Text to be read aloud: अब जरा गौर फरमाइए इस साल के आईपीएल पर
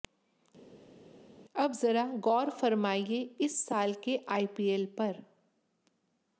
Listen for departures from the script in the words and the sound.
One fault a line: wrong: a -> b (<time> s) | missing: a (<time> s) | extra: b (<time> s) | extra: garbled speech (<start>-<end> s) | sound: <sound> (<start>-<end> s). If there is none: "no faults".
no faults